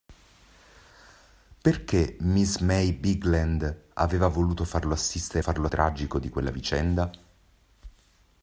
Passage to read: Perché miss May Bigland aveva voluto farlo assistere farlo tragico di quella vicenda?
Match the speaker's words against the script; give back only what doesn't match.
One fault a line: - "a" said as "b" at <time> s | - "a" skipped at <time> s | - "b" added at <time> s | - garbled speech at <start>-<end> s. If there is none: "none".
none